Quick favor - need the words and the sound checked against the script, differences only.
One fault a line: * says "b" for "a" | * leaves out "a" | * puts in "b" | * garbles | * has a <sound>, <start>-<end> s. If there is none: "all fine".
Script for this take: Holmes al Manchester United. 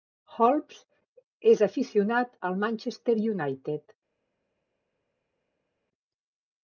* puts in "és aficionat"